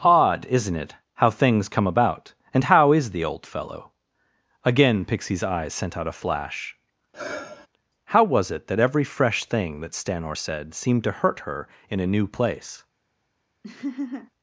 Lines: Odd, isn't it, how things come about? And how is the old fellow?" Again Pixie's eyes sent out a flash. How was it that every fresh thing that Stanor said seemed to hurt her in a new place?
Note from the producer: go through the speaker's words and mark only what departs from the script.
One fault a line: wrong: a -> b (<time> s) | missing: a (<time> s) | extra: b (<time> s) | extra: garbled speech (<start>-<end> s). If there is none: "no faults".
no faults